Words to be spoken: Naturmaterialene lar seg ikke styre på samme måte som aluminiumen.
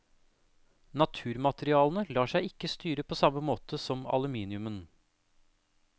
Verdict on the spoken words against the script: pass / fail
pass